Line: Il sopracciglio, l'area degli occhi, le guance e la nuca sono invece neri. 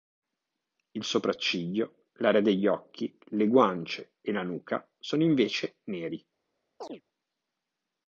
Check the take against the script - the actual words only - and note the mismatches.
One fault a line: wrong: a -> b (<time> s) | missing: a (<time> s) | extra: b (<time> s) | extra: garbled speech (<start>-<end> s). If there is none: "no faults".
no faults